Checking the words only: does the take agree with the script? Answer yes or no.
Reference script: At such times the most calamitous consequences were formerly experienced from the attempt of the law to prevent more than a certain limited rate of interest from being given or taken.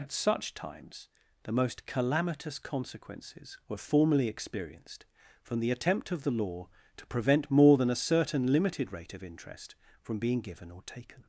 yes